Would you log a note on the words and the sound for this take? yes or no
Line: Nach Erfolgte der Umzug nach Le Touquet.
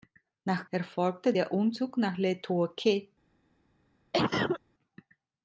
yes